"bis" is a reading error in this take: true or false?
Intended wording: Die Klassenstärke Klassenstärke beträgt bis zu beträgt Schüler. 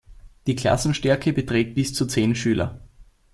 false